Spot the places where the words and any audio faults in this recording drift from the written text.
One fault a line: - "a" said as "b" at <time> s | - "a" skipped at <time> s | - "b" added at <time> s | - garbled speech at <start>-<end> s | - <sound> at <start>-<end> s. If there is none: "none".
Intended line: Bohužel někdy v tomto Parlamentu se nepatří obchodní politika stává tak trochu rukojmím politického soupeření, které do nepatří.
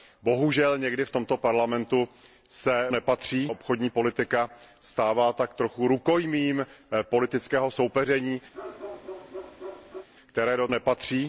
- bark at 8.5-10.1 s